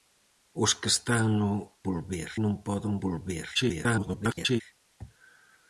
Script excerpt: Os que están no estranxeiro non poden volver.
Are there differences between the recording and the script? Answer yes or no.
yes